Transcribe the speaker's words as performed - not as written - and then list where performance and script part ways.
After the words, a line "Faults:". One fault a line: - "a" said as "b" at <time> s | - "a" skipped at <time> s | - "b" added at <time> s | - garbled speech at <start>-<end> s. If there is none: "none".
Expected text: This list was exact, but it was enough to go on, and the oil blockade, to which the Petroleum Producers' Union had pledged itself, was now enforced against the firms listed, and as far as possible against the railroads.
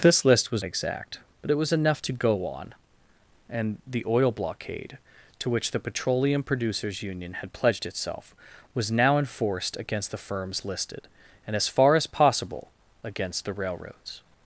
This list was exact, but it was enough to go on, and the oil blockade, to which the Petroleum Producers' Union had pledged itself, was now enforced against the firms listed, and as far as possible against the railroads.
Faults:
none